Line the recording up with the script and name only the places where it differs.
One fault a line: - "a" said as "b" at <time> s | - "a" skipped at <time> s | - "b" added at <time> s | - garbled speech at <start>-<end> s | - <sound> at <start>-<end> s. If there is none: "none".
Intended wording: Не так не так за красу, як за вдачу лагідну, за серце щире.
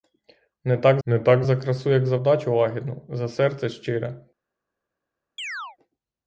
- chirp at 5.4-5.8 s